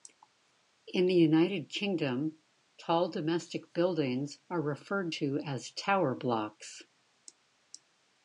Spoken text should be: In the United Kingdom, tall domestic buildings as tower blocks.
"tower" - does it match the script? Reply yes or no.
yes